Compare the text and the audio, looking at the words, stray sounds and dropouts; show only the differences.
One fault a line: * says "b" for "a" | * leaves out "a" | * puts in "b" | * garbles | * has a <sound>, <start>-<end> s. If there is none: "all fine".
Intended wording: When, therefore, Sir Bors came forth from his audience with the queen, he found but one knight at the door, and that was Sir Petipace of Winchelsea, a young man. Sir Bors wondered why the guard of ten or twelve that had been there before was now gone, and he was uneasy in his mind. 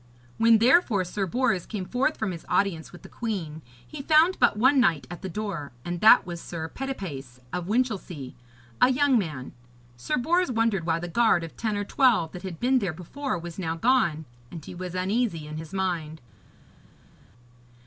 all fine